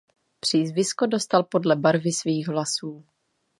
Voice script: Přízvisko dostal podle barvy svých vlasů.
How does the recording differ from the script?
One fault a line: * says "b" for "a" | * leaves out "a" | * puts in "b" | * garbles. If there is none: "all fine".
all fine